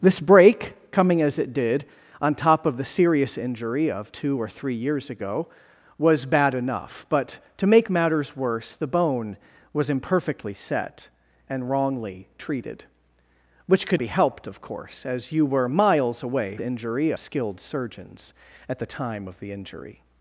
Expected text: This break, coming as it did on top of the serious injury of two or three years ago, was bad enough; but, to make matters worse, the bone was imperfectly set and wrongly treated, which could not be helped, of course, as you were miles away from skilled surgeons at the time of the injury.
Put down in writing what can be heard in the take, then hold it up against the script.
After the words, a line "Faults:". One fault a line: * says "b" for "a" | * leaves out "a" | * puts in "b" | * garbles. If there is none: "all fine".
This break, coming as it did on top of the serious injury of two or three years ago, was bad enough; but, to make matters worse, the bone was imperfectly set and wrongly treated, which could be helped, of course, as you were miles away injury skilled surgeons at the time of the injury.
Faults:
* leaves out "not"
* says "injury" for "from"